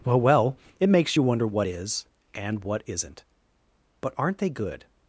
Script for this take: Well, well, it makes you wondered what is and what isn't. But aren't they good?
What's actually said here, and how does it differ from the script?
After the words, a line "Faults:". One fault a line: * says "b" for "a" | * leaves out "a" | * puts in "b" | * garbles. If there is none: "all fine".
Well, well, it makes you wonder what is and what isn't. But aren't they good?
Faults:
* says "wonder" for "wondered"